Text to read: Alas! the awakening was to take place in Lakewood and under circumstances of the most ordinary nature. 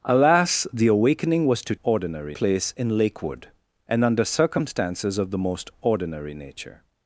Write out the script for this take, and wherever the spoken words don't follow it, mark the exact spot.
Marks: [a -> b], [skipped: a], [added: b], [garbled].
Alas! the awakening was to [take -> ordinary] place in Lakewood and under circumstances of the most ordinary nature.